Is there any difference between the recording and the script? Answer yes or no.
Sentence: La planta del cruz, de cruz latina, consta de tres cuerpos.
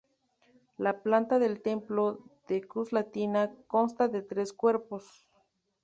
yes